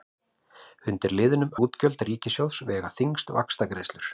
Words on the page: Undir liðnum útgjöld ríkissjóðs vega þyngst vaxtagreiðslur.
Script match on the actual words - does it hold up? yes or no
yes